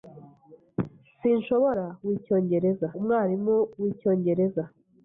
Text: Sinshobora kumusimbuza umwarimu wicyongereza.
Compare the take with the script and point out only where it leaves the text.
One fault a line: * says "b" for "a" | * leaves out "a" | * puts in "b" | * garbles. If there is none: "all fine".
* says "wicyongereza" for "kumusimbuza"